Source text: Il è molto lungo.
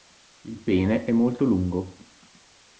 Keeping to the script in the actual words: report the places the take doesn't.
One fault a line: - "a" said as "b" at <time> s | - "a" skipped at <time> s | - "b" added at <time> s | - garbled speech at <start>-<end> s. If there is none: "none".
- "pene" added at 0.6 s